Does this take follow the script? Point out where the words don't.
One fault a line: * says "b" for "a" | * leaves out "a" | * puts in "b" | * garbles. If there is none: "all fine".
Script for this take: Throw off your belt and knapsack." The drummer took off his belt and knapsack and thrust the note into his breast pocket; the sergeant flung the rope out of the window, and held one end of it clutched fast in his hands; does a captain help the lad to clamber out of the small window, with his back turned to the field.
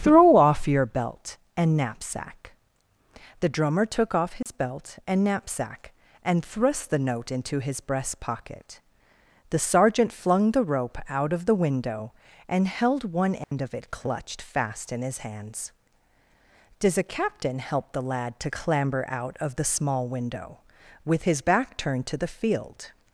all fine